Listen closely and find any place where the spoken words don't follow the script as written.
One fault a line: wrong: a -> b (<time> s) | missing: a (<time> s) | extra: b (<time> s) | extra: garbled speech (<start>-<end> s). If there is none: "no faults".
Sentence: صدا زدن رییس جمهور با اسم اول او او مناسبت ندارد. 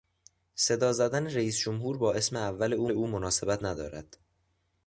no faults